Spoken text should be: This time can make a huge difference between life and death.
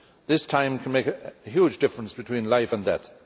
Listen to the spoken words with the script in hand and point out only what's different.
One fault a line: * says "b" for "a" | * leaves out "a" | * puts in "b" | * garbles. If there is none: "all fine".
all fine